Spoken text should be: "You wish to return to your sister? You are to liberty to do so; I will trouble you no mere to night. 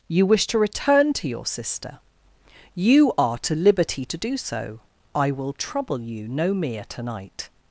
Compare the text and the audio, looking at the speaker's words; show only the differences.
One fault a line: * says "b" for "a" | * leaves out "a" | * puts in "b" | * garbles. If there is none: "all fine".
all fine